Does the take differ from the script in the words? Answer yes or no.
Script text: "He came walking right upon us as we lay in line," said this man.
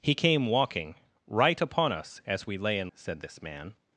yes